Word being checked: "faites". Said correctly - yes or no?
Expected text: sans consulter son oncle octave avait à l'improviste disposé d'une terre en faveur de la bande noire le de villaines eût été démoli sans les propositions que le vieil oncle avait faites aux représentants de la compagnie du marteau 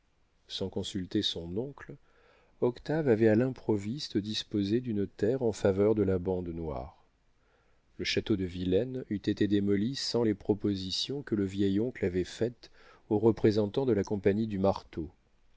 yes